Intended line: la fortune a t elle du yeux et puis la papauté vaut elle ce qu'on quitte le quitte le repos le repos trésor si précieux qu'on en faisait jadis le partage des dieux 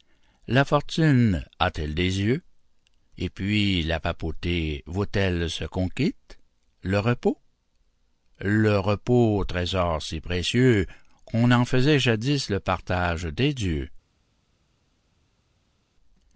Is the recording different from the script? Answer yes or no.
yes